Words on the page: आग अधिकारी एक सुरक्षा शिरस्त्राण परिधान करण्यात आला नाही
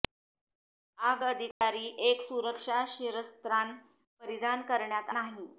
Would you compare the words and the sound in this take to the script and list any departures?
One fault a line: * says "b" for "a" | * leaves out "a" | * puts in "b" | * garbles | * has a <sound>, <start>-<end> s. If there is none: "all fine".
* has a dropout, 1.5-1.6 s
* leaves out "आला"